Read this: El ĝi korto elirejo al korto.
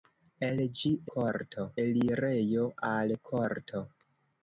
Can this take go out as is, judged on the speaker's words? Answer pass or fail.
pass